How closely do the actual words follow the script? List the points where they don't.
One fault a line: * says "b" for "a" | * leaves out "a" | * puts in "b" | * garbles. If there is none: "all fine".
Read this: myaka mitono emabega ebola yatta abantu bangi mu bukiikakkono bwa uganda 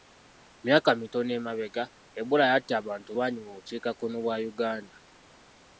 all fine